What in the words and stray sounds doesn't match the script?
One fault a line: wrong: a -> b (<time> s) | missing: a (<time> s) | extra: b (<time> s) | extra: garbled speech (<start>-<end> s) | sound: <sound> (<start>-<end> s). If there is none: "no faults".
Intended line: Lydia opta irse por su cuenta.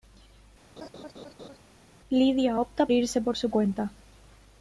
sound: laugh (0.8-1.6 s)